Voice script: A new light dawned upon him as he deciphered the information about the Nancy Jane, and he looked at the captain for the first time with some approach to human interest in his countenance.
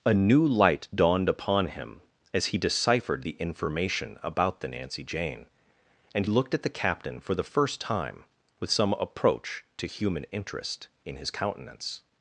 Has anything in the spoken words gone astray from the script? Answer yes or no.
yes